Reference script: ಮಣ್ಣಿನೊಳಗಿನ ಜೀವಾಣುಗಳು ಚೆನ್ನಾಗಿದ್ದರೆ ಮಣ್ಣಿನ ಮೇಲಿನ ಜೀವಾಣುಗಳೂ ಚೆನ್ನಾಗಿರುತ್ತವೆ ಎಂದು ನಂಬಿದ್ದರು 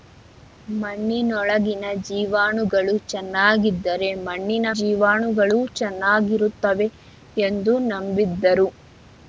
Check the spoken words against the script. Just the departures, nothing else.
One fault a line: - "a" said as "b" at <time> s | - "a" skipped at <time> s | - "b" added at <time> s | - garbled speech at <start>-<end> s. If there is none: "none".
- "ಮೇಲಿನ" skipped at 4.7 s